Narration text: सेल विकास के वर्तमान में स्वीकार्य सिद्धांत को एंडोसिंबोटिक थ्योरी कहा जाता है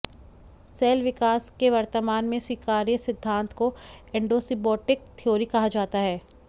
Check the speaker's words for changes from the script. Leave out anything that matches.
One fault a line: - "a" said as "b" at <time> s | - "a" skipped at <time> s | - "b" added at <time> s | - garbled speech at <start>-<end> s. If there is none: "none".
none